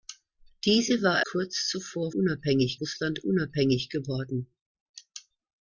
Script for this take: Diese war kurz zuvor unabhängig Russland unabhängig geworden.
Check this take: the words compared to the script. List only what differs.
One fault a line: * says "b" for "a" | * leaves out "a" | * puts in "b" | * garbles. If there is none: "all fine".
all fine